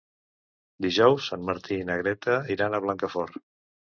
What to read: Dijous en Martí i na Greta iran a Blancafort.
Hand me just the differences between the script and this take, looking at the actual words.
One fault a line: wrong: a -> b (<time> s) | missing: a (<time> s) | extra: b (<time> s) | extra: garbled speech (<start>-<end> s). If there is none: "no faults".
no faults